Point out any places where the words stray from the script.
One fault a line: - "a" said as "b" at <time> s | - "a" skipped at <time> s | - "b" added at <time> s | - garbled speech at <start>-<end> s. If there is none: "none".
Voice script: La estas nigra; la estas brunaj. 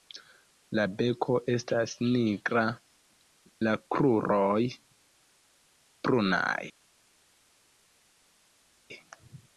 - "beko" added at 1.0 s
- "estas" said as "kruroj" at 4.0 s